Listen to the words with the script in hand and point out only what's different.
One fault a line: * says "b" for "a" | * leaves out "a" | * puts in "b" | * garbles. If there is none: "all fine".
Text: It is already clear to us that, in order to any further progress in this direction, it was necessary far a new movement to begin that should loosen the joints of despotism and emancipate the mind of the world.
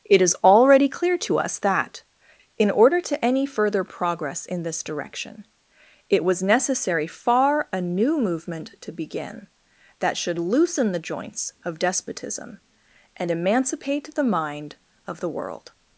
all fine